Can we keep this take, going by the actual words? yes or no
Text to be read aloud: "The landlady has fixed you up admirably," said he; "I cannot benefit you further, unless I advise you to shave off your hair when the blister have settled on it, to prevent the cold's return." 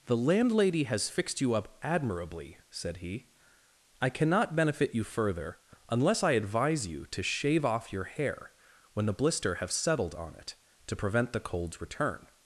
yes